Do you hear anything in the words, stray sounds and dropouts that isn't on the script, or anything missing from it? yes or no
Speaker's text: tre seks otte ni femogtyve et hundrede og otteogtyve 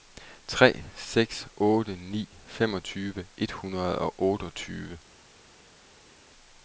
no